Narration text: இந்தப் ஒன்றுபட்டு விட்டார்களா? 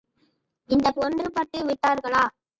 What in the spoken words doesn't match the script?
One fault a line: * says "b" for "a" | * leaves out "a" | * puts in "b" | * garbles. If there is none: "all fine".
all fine